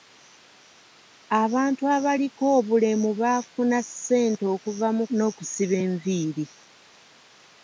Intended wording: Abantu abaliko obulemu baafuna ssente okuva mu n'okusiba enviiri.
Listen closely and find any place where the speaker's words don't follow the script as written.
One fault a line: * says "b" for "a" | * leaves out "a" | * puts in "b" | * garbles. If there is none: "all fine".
all fine